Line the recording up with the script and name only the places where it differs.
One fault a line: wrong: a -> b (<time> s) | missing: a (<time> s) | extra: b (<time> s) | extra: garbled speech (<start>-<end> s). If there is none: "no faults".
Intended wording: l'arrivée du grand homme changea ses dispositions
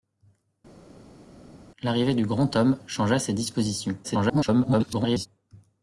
extra: garbled speech (4.0-5.3 s)